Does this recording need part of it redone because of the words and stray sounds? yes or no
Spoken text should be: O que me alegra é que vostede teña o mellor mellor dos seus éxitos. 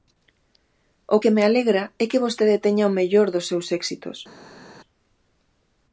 yes